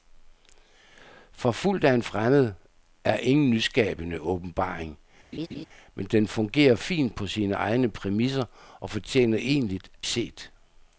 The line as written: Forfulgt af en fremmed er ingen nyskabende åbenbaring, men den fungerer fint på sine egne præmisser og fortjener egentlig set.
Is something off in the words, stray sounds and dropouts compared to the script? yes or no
yes